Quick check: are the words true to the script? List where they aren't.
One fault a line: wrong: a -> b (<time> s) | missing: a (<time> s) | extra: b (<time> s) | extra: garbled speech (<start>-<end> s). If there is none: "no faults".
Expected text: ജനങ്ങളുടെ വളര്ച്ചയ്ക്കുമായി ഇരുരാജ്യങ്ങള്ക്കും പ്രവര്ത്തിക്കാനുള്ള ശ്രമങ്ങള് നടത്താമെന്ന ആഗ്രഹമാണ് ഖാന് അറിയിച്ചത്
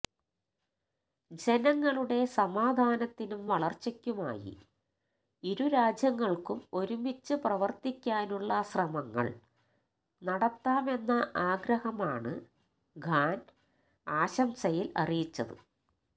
extra: സമാധാനത്തിനും (2.4 s)
extra: ഒരുമിച്ച് (6.7 s)
extra: ആശംസയില് (14.1 s)